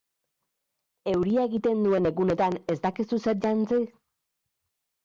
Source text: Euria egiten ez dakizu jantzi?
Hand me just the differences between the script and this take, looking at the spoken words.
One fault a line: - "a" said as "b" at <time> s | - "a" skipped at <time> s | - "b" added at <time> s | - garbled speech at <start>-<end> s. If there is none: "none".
- "duen egunetan" added at 1.9 s
- "zer" added at 3.3 s